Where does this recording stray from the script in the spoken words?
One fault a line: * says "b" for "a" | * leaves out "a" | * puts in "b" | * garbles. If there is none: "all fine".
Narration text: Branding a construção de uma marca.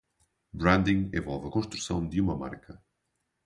* puts in "envolve"